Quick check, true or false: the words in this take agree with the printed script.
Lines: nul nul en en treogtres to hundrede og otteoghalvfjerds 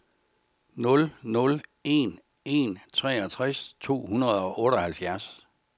true